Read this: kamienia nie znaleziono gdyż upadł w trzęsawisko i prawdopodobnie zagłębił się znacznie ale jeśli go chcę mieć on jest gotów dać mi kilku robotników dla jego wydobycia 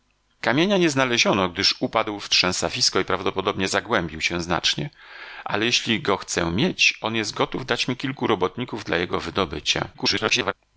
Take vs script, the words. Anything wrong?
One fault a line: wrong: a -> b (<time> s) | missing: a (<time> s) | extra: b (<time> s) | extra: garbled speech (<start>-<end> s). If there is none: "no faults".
extra: garbled speech (9.9-10.5 s)